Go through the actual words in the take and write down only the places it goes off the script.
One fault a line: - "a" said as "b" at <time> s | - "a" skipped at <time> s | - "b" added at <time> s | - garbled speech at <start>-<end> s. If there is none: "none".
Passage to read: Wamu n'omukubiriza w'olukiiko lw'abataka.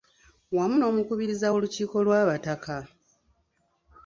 none